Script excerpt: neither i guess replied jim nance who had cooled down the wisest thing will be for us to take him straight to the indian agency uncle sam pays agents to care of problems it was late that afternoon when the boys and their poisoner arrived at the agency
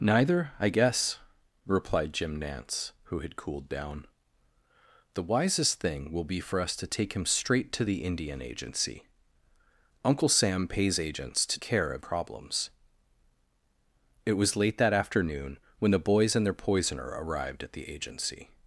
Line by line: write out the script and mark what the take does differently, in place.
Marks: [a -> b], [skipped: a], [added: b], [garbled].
neither i guess replied jim nance who had cooled down the wisest thing will be for us to take him straight to the indian agency uncle sam pays agents to care of problems it was late that afternoon when the boys and their poisoner arrived at the agency